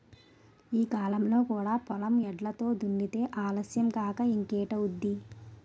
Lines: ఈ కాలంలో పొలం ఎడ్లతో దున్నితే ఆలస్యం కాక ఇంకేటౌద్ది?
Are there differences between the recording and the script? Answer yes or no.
yes